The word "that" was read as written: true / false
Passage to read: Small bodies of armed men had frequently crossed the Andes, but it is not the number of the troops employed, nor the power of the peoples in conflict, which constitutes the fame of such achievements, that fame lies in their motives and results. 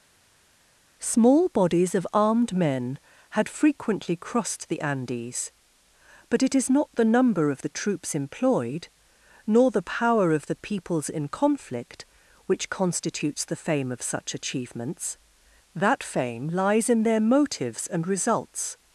true